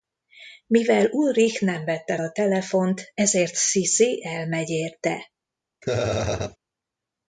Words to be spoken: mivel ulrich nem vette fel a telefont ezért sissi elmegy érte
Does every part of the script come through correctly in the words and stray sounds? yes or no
no